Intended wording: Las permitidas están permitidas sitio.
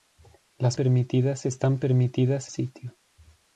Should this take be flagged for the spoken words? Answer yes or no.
no